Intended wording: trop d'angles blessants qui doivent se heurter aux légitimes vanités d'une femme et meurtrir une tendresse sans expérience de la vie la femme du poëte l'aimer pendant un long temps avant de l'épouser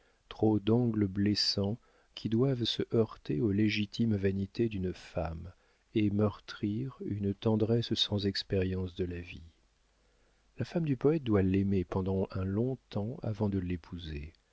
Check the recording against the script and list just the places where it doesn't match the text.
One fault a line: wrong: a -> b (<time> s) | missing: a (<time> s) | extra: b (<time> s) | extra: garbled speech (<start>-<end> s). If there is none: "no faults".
extra: doit (11.2 s)